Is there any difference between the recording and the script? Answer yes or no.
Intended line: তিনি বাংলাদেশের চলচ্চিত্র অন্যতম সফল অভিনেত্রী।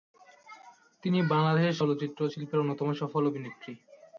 yes